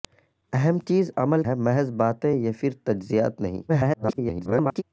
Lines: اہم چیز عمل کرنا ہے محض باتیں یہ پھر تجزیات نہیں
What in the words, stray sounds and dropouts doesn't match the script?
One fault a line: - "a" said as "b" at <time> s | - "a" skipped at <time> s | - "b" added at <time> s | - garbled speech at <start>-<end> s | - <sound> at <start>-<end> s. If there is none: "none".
- "کرنا" skipped at 1.4 s
- garbled speech at 3.7-4.8 s